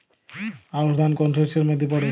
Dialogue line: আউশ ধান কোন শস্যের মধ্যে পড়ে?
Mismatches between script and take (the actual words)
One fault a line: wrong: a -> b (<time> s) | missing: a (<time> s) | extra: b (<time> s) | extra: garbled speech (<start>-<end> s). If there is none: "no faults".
no faults